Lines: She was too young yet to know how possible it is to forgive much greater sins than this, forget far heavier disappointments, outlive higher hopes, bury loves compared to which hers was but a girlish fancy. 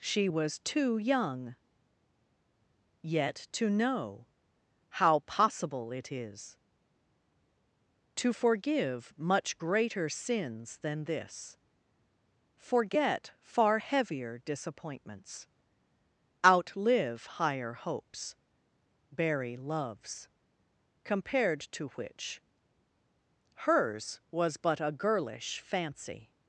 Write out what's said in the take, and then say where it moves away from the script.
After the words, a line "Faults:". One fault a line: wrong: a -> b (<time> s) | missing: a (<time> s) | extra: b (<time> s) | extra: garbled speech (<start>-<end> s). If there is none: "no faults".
She was too young yet to know how possible it is to forgive much greater sins than this, forget far heavier disappointments, outlive higher hopes, bury loves compared to which hers was but a girlish fancy.
Faults:
no faults